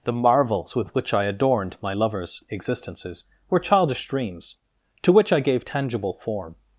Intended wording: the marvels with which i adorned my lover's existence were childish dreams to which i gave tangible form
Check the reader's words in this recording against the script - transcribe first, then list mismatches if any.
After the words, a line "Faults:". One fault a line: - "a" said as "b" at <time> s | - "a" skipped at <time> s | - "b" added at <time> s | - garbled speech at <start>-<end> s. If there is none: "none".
the marvels with which i adorned my lover's existences were childish dreams to which i gave tangible form
Faults:
- "existence" said as "existences" at 2.5 s